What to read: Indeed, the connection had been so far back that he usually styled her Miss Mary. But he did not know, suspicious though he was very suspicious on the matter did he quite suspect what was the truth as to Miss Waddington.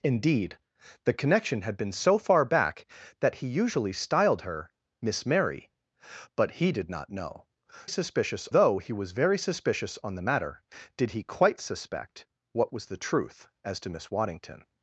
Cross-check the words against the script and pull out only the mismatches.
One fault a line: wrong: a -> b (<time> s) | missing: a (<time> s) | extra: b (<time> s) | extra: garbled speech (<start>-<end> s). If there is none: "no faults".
no faults